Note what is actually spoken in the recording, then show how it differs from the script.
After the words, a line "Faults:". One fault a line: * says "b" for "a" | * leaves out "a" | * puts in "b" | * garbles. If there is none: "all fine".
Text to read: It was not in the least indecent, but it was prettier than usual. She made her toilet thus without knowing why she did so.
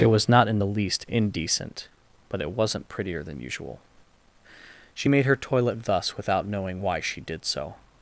It was not in the least indecent, but it wasn't prettier than usual. She made her toilet thus without knowing why she did so.
Faults:
* says "wasn't" for "was"